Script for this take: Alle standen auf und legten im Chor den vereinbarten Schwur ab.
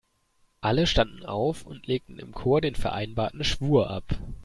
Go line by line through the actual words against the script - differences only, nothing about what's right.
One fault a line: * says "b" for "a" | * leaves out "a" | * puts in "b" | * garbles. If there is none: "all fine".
all fine